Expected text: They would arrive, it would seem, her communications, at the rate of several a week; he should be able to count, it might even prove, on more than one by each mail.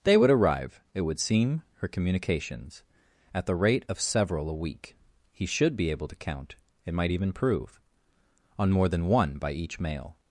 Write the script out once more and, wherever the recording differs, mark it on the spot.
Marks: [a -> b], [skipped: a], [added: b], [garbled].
They would arrive, it would seem, her communications, at the rate of several a week; he should be able to count, it might even prove, on more than one by each mail.